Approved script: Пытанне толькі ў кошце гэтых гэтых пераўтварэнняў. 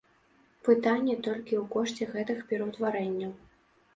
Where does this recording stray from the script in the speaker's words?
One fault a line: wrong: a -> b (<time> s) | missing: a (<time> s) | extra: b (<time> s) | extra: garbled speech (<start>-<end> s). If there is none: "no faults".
missing: гэтых (2.4 s)